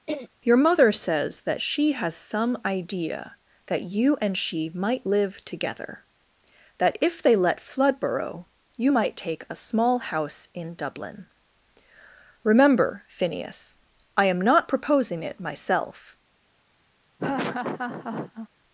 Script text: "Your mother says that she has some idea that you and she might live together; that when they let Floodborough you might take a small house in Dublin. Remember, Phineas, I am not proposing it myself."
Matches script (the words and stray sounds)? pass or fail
fail